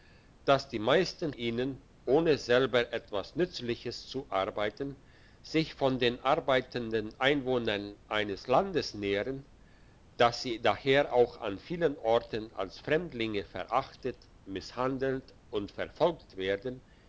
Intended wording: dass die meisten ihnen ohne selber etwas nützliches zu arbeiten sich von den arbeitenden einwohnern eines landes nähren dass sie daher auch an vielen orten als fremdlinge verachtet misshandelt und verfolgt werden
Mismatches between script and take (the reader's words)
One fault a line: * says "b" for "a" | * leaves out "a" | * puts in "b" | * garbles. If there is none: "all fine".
all fine